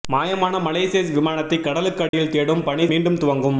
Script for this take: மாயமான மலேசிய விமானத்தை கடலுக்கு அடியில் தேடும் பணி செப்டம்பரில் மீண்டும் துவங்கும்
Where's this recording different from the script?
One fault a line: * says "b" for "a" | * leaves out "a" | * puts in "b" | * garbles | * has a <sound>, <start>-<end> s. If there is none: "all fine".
* has a dropout, 2.1-2.1 s
* leaves out "செப்டம்பரில்"